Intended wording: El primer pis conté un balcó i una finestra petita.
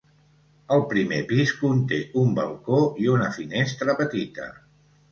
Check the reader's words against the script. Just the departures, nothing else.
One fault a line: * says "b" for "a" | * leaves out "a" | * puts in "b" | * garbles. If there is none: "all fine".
all fine